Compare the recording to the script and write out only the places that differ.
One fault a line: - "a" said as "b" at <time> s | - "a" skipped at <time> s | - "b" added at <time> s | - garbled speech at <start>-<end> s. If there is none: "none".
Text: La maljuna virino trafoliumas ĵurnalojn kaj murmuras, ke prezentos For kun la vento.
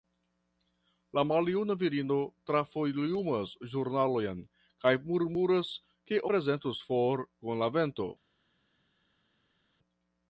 none